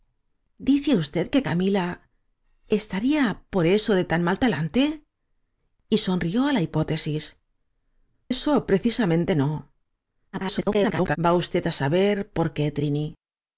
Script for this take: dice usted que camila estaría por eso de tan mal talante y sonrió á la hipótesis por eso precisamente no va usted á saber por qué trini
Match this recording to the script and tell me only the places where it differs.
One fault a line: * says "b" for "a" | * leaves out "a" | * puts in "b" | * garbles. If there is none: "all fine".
* leaves out "por"
* garbles